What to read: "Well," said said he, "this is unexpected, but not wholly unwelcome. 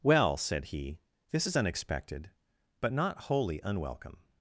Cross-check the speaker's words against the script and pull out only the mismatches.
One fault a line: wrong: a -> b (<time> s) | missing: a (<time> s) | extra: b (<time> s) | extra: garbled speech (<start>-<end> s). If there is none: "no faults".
missing: said (0.7 s)